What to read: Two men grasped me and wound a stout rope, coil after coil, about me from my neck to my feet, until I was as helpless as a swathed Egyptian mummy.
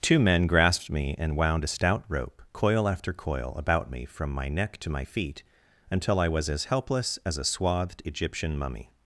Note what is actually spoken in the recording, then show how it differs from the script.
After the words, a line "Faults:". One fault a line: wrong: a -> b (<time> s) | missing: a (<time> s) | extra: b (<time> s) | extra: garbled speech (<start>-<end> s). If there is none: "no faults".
Two men grasped me and wound a stout rope, coil after coil, about me from my neck to my feet, until I was as helpless as a swathed Egyptian mummy.
Faults:
no faults